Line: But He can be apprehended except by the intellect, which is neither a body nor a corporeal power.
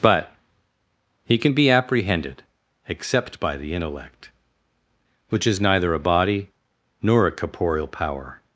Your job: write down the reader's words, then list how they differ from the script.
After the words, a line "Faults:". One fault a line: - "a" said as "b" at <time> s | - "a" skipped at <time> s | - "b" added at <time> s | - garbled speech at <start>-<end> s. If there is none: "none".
But He can be apprehended except by the intellect, which is neither a body nor a corporeal power.
Faults:
none